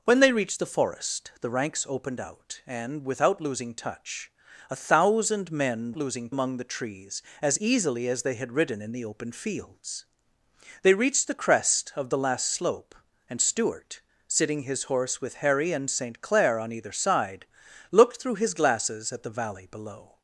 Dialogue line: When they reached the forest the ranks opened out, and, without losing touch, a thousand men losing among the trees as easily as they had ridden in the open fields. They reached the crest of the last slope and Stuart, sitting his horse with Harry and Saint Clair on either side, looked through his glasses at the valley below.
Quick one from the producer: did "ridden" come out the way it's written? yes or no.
yes